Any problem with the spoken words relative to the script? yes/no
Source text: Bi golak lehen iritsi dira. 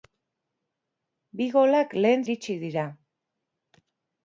no